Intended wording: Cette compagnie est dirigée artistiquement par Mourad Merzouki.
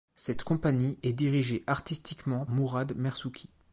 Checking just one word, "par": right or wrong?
wrong